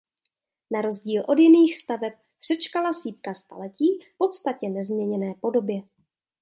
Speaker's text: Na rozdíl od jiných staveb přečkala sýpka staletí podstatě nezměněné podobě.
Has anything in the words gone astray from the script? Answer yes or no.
no